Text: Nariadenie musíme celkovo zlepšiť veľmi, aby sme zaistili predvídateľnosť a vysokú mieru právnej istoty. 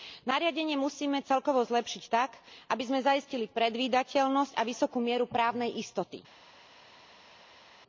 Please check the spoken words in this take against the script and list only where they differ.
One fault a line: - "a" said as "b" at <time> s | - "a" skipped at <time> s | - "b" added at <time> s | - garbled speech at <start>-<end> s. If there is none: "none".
- "veľmi" said as "tak" at 2.1 s